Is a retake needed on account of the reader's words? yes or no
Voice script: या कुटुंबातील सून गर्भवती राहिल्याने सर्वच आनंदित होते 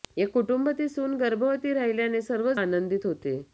no